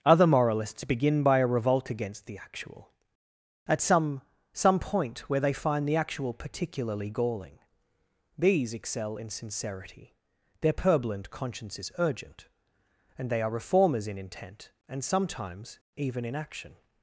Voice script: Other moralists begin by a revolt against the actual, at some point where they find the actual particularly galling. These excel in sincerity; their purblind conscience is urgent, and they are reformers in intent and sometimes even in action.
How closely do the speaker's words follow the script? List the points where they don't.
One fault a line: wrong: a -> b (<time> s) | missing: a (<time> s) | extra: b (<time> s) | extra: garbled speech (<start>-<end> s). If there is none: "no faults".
extra: some (4.5 s)